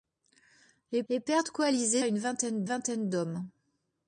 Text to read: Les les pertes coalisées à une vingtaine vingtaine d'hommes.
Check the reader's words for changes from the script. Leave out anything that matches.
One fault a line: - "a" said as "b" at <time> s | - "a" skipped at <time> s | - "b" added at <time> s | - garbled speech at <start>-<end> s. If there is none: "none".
none